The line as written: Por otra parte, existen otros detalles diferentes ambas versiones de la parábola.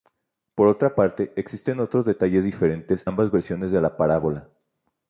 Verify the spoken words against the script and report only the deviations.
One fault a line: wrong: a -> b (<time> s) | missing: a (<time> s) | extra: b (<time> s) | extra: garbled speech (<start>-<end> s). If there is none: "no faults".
no faults